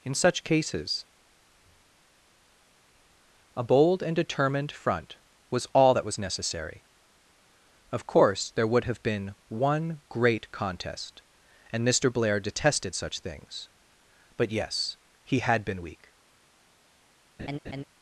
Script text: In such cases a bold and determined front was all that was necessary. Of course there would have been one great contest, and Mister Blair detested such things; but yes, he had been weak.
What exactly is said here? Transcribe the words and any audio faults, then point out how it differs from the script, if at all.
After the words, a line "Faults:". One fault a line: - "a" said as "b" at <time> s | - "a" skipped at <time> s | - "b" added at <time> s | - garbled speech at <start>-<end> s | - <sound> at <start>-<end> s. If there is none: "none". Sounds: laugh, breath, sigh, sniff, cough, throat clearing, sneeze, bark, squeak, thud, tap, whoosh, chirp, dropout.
In such cases a bold and determined front was all that was necessary. Of course there would have been one great contest, and Mister Blair detested such things; but yes, he had been weak.
Faults:
- laugh at 17.4-17.8 s